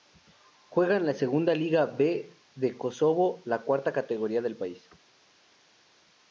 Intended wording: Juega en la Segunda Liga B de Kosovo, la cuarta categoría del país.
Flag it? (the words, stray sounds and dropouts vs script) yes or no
no